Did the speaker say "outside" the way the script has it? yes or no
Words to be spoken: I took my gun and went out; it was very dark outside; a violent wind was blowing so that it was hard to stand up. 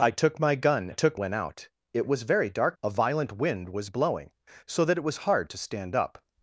no